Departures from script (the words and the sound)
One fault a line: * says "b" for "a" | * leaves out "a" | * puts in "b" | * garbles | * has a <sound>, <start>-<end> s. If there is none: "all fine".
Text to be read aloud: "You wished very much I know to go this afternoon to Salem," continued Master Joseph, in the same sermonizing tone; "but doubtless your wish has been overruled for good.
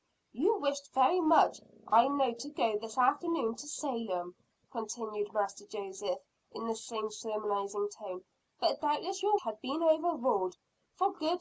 * leaves out "wish"